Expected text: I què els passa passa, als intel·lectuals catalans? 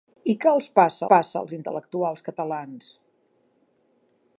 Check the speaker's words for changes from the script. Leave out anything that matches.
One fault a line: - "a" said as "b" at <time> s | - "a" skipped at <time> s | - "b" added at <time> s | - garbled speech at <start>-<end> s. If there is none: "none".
none